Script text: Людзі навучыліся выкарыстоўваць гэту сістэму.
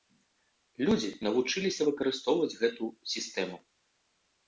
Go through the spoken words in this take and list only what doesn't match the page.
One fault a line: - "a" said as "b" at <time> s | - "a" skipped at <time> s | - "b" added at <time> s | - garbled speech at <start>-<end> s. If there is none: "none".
none